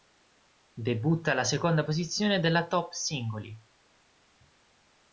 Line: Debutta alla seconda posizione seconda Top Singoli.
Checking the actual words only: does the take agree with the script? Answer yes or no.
no